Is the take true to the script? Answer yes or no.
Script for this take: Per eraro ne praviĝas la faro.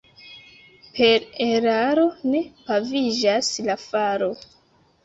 yes